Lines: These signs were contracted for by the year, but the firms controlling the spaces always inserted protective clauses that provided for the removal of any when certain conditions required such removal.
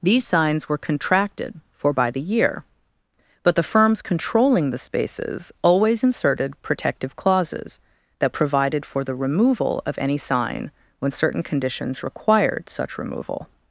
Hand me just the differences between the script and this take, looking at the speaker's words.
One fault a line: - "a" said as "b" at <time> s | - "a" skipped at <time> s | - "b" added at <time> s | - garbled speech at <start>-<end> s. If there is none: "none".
- "sign" added at 10.2 s